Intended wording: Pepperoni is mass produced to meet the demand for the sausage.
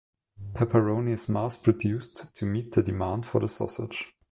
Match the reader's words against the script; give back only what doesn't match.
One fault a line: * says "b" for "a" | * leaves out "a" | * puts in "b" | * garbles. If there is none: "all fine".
all fine